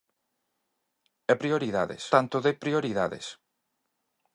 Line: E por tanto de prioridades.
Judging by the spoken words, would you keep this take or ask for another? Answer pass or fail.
fail